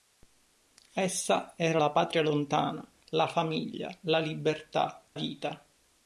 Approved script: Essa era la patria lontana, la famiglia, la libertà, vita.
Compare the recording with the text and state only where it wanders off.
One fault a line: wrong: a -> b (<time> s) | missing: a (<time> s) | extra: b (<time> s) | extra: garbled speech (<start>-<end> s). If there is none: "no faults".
no faults